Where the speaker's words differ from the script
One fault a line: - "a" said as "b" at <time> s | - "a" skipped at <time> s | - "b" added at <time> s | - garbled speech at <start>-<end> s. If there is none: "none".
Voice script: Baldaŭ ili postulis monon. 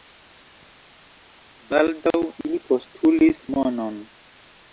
none